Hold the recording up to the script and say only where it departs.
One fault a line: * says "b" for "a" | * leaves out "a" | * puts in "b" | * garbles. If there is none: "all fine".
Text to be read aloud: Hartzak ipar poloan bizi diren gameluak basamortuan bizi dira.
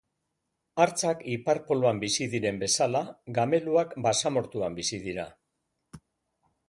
* puts in "bezala"